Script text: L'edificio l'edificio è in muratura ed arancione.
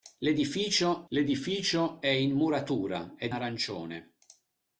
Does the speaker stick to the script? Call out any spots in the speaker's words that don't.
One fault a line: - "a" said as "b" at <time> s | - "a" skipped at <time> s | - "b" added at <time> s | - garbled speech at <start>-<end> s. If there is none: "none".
none